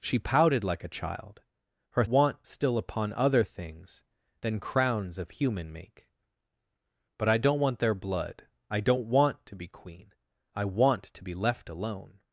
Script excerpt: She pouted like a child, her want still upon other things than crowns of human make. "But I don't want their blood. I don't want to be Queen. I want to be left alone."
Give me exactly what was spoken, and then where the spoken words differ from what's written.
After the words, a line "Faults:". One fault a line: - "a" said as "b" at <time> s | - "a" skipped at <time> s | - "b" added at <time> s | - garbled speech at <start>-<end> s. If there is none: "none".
She pouted like a child, her want still upon other things than crowns of human make. "But I don't want their blood. I don't want to be Queen. I want to be left alone."
Faults:
none